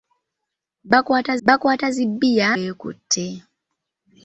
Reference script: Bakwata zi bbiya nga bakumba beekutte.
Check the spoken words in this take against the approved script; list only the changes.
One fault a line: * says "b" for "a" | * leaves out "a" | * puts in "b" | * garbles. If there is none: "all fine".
* puts in "bakwata"
* leaves out "nga bakumba"